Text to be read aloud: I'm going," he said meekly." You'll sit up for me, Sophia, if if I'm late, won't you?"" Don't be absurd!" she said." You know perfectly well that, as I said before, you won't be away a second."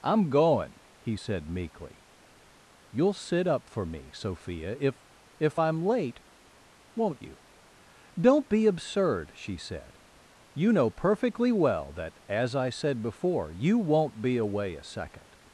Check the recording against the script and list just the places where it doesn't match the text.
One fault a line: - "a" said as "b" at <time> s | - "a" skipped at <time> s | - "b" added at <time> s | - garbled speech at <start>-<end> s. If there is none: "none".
none